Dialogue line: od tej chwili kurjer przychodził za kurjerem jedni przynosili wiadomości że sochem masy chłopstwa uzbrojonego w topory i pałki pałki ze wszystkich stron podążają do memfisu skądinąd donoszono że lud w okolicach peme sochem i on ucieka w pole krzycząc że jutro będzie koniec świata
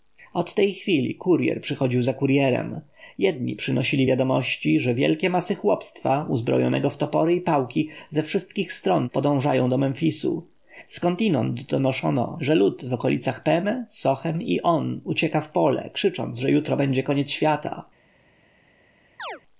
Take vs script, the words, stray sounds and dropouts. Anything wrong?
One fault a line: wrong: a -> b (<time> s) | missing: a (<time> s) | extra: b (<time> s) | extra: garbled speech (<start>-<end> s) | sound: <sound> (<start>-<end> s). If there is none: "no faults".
wrong: sochem -> wielkie (4.9 s)
missing: pałki (7.9 s)
sound: chirp (19.2-19.4 s)